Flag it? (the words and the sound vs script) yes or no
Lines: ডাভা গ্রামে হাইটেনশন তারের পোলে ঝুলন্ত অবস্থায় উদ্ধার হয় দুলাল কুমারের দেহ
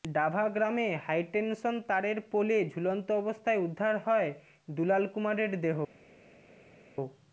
no